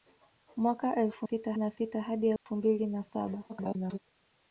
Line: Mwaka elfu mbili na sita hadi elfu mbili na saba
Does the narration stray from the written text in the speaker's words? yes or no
yes